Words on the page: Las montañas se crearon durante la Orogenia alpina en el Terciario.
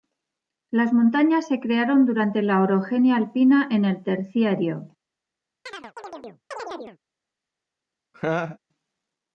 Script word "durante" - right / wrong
right